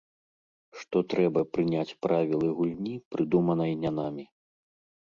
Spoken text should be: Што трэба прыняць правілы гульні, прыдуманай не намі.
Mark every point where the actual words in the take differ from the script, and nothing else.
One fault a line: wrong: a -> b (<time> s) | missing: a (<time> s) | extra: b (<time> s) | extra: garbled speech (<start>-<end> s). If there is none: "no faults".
no faults